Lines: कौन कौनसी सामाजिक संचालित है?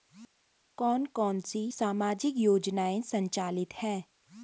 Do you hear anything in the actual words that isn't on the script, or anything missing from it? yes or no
yes